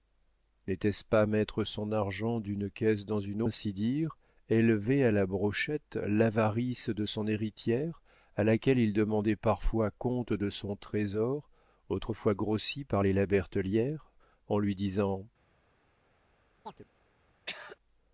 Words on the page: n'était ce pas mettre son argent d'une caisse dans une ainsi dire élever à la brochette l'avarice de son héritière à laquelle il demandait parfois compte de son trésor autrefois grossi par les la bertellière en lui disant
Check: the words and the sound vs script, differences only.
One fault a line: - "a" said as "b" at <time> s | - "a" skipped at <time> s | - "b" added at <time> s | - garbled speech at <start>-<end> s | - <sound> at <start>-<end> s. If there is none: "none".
- chirp at 16.6-16.9 s
- throat clearing at 17.5-17.8 s